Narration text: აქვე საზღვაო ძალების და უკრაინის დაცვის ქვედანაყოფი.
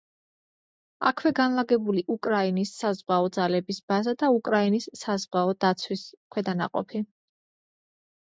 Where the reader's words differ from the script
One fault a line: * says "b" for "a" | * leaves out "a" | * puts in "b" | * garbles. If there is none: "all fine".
* puts in "განლაგებული უკრაინის"
* puts in "ბაზა"
* puts in "საზღვაო"